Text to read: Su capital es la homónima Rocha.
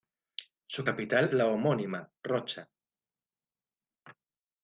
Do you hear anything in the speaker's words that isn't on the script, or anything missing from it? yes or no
yes